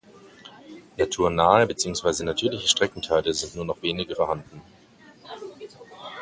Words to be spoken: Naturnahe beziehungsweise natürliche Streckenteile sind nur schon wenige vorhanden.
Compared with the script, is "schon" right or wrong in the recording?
wrong